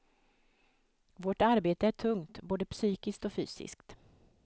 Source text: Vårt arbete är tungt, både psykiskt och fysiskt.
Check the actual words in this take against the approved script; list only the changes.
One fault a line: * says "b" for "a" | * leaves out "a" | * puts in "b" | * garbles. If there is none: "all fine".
all fine